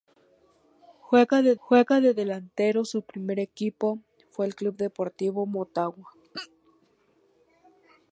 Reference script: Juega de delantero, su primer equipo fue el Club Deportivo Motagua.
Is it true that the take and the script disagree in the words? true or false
true